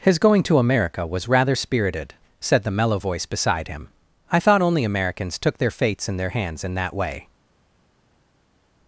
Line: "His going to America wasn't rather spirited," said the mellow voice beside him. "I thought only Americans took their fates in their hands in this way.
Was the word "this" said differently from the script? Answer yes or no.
yes